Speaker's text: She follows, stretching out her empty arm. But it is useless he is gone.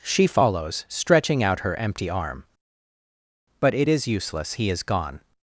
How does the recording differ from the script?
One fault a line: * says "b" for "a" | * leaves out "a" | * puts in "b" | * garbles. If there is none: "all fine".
all fine